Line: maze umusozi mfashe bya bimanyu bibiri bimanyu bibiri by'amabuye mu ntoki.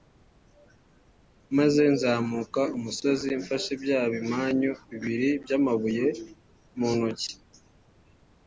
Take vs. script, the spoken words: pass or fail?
fail